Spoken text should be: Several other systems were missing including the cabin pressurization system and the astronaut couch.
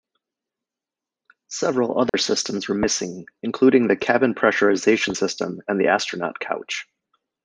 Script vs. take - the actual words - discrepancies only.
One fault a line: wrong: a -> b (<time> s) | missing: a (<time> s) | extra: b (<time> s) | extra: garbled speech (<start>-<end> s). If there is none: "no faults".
no faults